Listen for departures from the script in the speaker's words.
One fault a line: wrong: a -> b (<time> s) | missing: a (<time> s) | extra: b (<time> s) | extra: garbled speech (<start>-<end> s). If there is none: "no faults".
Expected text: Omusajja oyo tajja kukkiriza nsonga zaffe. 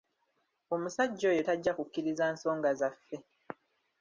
no faults